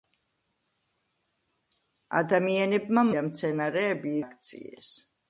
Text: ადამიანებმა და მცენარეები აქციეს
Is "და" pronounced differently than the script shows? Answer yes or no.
no